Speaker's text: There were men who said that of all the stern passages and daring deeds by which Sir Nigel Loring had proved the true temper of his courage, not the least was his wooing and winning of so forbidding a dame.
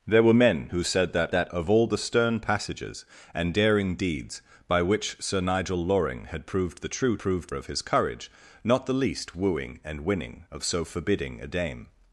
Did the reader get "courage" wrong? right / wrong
right